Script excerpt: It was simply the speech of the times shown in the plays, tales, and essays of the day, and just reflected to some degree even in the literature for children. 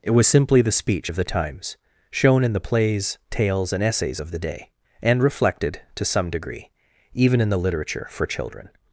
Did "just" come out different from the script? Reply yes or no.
yes